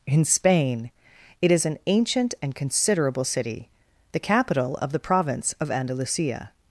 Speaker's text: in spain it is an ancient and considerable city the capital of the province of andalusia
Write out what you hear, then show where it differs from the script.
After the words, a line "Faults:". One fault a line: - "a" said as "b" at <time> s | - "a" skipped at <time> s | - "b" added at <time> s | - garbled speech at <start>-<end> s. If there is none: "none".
in spain it is an ancient and considerable city the capital of the province of andalusia
Faults:
none